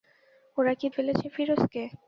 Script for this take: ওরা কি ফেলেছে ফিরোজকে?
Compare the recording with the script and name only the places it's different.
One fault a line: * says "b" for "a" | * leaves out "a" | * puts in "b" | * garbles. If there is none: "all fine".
all fine